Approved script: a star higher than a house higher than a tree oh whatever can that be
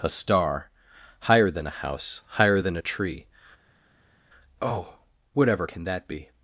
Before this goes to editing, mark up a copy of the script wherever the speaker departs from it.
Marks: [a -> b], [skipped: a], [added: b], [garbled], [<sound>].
a star higher than a house higher than a tree oh whatever can that be